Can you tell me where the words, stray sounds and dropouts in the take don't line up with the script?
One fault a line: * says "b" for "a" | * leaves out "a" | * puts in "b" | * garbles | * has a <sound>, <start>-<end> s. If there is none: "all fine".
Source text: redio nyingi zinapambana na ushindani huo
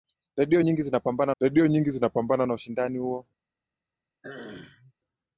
* puts in "redio nyingi zinapambana"
* has a throat clearing, 4.2-4.9 s